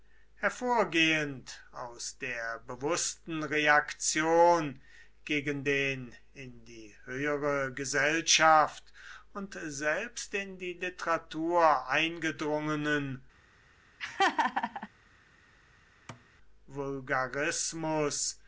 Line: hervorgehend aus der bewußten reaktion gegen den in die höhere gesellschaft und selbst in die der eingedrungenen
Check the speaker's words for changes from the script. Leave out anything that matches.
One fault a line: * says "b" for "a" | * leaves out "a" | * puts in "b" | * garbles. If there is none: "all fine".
* says "literatur" for "der"